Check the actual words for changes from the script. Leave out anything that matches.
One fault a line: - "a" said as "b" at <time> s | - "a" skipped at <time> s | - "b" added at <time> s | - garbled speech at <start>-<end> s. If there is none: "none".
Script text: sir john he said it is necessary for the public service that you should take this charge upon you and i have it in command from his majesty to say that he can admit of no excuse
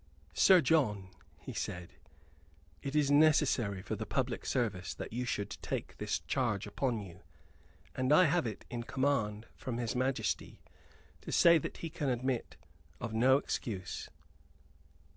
none